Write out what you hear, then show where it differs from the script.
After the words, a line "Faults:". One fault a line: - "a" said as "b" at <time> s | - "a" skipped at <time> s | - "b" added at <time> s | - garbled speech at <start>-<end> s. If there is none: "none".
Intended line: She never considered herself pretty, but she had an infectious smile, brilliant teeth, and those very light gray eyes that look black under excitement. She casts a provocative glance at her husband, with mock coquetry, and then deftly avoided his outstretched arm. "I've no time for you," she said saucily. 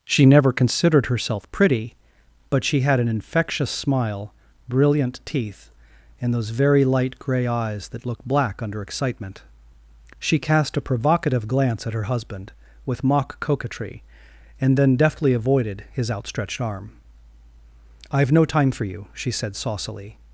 She never considered herself pretty, but she had an infectious smile, brilliant teeth, and those very light gray eyes that look black under excitement. She cast a provocative glance at her husband, with mock coquetry, and then deftly avoided his outstretched arm. "I've no time for you," she said saucily.
Faults:
- "casts" said as "cast" at 10.4 s